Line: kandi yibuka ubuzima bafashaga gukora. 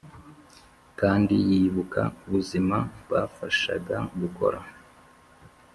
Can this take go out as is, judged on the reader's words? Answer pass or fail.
pass